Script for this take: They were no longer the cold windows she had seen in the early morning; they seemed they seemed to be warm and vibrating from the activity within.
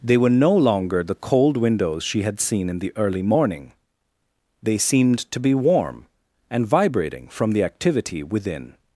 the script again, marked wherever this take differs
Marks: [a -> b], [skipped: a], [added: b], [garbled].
They were no longer the cold windows she had seen in the early morning; they seemed [skipped: they seemed] to be warm and vibrating from the activity within.